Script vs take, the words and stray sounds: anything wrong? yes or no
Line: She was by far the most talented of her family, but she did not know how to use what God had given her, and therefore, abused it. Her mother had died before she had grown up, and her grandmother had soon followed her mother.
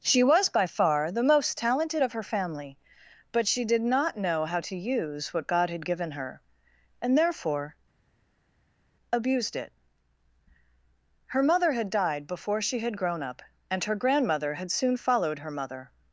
no